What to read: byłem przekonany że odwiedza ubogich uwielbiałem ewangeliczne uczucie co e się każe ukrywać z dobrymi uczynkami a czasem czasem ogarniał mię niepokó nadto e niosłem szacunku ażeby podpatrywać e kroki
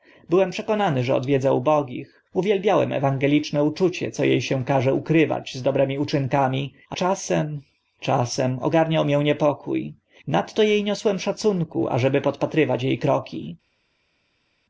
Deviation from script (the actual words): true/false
false